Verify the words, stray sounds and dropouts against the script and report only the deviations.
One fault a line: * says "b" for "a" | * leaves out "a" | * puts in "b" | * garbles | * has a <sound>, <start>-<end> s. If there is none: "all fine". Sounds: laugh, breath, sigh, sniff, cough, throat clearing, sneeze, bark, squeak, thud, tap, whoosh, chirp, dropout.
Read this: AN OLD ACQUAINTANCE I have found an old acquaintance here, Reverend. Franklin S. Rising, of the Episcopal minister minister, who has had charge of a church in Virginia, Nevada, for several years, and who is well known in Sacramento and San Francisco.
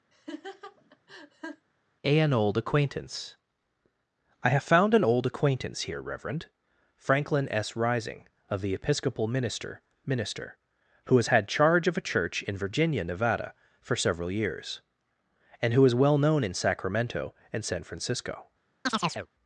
* has a laugh, 0.1-1.7 s
* has a chirp, 18.9-19.3 s